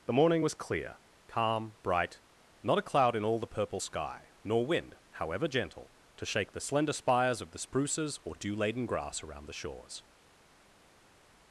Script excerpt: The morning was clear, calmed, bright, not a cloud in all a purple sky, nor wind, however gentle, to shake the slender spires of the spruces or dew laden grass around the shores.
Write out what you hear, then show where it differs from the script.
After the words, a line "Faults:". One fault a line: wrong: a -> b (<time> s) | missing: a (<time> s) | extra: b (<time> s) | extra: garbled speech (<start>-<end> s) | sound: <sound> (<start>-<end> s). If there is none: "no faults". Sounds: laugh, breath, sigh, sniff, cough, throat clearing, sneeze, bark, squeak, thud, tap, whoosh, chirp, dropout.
The morning was clear, calm, bright, not a cloud in all the purple sky, nor wind, however gentle, to shake the slender spires of the spruces or dew laden grass around the shores.
Faults:
wrong: calmed -> calm (1.3 s)
wrong: a -> the (3.4 s)